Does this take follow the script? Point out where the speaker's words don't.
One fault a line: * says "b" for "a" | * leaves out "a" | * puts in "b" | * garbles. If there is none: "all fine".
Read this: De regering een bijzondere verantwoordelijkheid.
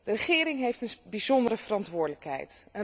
* puts in "heeft"